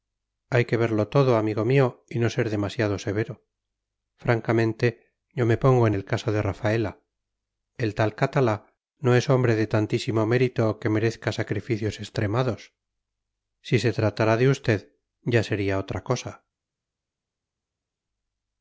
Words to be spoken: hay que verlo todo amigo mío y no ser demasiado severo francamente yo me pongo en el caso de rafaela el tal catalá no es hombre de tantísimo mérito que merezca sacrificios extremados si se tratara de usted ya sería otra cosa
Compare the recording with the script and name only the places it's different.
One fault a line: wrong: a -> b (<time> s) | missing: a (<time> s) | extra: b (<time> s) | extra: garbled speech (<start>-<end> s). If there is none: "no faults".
no faults